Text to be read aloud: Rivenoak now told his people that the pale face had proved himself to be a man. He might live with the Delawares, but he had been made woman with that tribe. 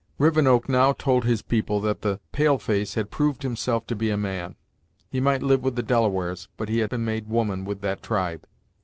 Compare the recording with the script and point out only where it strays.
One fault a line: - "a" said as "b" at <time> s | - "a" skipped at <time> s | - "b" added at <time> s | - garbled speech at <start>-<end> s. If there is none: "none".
none